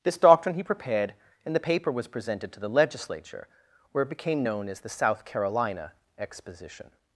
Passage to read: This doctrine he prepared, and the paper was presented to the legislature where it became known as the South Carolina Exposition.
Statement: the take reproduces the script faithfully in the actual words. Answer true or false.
true